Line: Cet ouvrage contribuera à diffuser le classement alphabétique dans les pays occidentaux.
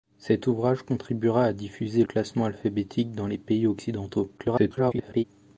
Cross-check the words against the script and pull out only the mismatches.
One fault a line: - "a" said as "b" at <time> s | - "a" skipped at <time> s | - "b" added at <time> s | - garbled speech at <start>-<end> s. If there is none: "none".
- "le" skipped at 2.0 s
- garbled speech at 4.4-5.2 s